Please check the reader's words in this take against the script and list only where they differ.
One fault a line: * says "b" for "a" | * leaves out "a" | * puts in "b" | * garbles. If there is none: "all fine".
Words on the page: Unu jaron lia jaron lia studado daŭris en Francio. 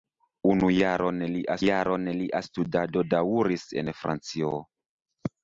all fine